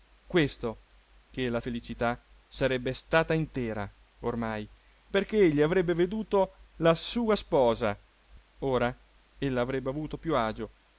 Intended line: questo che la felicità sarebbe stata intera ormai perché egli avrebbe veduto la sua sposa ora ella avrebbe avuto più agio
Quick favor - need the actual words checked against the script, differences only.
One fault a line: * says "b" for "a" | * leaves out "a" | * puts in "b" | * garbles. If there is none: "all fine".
all fine